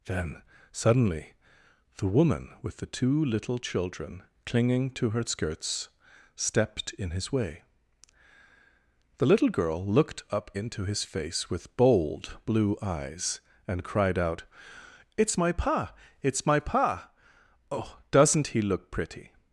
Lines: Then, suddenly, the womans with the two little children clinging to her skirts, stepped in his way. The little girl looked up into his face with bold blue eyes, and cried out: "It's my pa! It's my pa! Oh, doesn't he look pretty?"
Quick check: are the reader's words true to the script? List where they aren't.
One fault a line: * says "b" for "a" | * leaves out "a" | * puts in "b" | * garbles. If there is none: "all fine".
* says "woman" for "womans"